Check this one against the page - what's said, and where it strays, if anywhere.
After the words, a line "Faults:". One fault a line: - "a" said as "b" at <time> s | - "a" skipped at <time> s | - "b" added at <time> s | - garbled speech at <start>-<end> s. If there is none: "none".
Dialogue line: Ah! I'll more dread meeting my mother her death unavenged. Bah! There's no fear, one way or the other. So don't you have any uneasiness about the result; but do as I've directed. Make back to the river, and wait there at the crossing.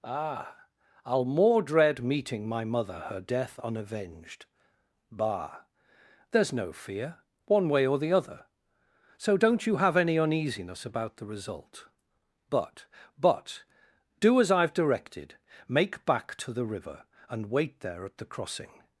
Ah! I'll more dread meeting my mother her death unavenged. Bah! There's no fear, one way or the other. So don't you have any uneasiness about the result; but but do as I've directed. Make back to the river, and wait there at the crossing.
Faults:
- "but" added at 13.2 s